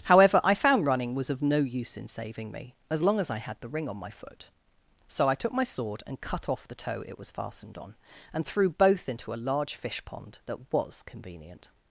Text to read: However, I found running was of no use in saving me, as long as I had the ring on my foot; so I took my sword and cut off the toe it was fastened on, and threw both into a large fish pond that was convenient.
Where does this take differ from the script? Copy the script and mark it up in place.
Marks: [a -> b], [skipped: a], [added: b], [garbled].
However, I found running was of no use in saving me, as long as I had the ring on my foot; so I took my sword and cut off the toe it was fastened on, and threw both into a large fish pond that was convenient.